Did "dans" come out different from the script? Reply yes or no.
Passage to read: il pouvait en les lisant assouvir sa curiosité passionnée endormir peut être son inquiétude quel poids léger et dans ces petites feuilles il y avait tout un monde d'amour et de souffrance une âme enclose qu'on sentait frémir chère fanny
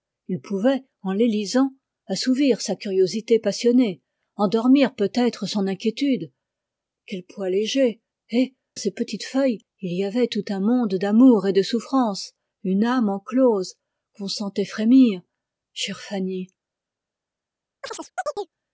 yes